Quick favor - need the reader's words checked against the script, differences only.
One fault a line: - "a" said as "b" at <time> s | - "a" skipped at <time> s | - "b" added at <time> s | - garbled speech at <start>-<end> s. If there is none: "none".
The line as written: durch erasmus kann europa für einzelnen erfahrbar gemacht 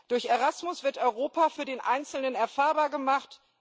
- "kann" said as "wird" at 0.8 s
- "den" added at 1.6 s